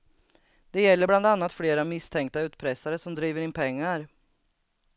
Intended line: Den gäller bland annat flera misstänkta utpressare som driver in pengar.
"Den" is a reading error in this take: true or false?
true